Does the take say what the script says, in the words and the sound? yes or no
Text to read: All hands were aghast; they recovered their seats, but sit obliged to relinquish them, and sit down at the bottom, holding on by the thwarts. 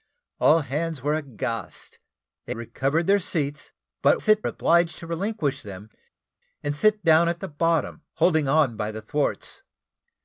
yes